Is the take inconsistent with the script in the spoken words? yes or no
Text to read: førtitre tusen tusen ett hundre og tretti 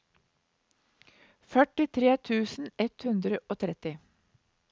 yes